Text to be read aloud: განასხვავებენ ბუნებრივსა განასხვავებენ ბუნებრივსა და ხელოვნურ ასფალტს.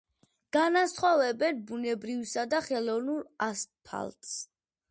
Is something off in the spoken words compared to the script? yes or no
yes